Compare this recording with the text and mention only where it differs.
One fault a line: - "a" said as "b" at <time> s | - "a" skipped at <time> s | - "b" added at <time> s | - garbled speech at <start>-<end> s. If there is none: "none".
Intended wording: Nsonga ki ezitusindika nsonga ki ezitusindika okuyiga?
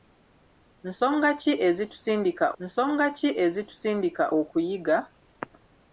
none